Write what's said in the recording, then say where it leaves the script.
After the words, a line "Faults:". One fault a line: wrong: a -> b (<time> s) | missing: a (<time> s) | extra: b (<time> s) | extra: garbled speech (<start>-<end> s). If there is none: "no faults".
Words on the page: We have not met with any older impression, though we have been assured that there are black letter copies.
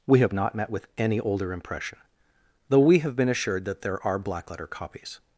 We have not met with any older impression, though we have been assured that there are black letter copies.
Faults:
no faults